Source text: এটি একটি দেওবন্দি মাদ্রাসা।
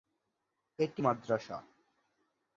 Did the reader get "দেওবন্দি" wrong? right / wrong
wrong